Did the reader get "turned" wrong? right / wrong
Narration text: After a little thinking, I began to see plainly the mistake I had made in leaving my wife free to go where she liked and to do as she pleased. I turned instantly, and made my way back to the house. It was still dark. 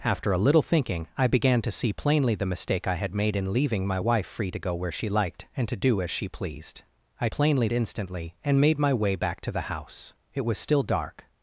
wrong